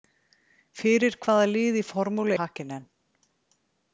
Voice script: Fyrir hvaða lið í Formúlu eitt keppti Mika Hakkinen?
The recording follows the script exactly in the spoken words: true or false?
false